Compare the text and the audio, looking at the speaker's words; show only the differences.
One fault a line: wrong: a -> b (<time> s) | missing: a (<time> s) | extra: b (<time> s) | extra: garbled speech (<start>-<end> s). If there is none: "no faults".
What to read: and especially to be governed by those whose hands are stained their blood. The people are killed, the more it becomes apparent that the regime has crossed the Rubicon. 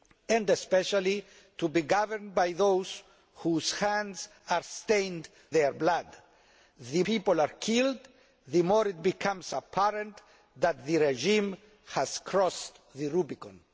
no faults